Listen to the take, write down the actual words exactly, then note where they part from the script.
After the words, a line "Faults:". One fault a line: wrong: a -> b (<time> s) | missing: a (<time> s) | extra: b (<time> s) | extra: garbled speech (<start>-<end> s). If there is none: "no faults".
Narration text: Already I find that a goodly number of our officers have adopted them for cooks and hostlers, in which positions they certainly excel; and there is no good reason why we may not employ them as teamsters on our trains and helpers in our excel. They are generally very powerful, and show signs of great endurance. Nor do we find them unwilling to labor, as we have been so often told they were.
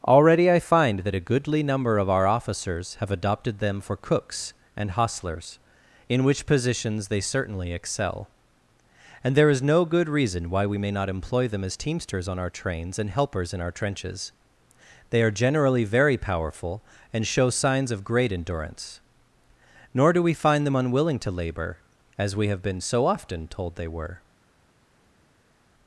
Already I find that a goodly number of our officers have adopted them for cooks and hostlers, in which positions they certainly excel; and there is no good reason why we may not employ them as teamsters on our trains and helpers in our trenches. They are generally very powerful, and show signs of great endurance. Nor do we find them unwilling to labor, as we have been so often told they were.
Faults:
wrong: excel -> trenches (13.7 s)